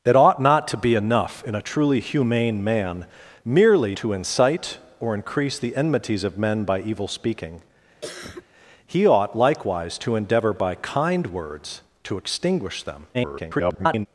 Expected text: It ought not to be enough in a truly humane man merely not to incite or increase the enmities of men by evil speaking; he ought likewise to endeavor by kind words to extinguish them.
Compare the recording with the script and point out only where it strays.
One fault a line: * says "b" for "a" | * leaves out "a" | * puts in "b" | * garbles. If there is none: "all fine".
* leaves out "not"
* garbles